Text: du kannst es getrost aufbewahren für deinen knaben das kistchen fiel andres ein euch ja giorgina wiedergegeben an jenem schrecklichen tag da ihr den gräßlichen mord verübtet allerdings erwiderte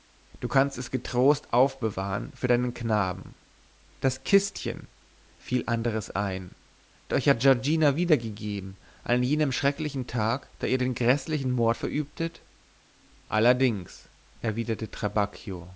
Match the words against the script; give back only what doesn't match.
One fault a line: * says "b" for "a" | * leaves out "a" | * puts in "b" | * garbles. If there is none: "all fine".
all fine